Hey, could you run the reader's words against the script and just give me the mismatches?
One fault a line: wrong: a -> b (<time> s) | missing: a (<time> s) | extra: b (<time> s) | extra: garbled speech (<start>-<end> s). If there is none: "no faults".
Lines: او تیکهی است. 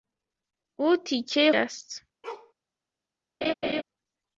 no faults